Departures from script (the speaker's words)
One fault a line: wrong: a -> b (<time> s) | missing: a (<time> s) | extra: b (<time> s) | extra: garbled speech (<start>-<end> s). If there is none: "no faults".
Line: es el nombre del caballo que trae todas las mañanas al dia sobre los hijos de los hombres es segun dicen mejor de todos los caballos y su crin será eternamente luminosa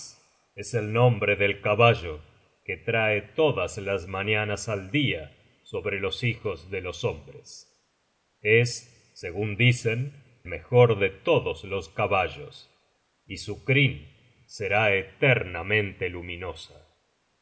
no faults